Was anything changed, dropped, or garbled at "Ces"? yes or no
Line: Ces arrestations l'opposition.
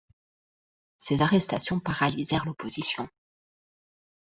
no